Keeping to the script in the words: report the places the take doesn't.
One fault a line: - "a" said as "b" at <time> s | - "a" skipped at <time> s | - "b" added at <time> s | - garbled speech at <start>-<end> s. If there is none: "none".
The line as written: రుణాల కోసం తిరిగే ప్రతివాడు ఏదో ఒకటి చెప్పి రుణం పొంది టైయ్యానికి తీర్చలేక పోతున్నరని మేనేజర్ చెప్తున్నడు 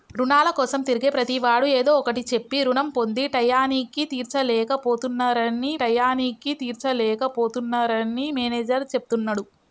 - "టైయ్యానికి తీర్చలేక పోతున్నరని" added at 5.8 s